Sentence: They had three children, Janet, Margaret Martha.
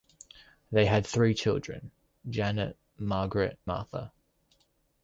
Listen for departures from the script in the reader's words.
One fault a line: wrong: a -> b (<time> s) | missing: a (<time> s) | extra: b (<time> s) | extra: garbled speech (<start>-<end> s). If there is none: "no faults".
no faults